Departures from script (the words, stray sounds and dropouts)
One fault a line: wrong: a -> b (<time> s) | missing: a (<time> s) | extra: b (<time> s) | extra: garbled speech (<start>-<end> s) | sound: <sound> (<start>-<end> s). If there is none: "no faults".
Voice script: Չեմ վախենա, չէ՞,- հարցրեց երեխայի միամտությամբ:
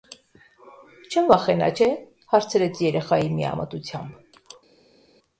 no faults